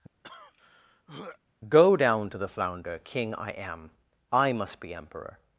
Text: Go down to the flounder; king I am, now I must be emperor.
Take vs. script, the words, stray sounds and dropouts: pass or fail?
fail